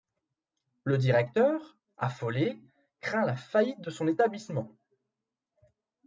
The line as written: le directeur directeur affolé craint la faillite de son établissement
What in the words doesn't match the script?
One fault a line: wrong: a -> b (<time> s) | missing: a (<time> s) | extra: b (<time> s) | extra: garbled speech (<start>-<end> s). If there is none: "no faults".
missing: directeur (1.8 s)